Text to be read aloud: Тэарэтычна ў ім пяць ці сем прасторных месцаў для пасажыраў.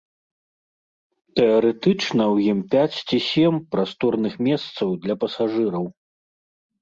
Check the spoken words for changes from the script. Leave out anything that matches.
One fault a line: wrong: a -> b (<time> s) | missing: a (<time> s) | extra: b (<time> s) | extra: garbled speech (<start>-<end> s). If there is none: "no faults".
no faults